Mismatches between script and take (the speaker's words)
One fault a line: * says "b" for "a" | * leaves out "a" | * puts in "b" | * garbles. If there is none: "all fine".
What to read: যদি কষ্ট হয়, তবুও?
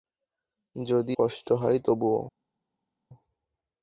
all fine